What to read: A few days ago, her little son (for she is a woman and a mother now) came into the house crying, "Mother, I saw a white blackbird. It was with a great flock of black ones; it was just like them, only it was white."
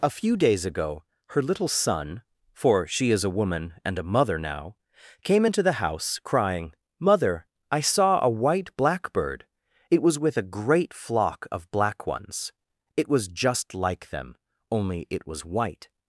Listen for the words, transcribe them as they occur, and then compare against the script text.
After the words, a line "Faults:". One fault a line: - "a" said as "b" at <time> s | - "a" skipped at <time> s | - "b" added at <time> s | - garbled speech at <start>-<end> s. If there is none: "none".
A few days ago, her little son (for she is a woman and a mother now) came into the house crying, "Mother, I saw a white blackbird. It was with a great flock of black ones; it was just like them, only it was white."
Faults:
none